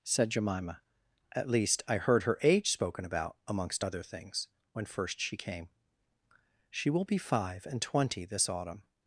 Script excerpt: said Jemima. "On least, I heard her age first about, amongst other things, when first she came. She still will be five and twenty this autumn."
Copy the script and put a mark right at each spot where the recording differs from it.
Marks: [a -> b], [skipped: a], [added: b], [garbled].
said Jemima. ["On -> At] least, I heard her age [first -> spoken] about, amongst other things, when first she came. She [skipped: still] will be five and twenty this autumn."